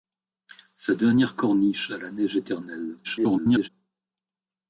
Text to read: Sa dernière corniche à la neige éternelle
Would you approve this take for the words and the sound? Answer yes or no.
no